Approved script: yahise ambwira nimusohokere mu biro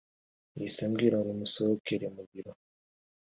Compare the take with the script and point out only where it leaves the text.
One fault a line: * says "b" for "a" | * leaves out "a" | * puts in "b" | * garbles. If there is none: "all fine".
all fine